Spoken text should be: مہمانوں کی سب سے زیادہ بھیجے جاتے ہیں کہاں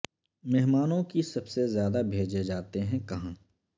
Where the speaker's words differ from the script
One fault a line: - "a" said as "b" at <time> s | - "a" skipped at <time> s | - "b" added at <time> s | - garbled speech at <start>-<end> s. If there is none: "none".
none